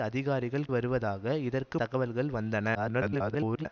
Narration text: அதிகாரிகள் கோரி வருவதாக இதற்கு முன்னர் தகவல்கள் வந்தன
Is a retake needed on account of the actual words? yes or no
yes